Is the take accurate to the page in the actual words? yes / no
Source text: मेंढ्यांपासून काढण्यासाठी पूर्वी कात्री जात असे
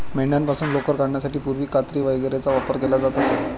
no